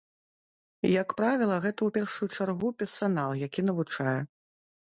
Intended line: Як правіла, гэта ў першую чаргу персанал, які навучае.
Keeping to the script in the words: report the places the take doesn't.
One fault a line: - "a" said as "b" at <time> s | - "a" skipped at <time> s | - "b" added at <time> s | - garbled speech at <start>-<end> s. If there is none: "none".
none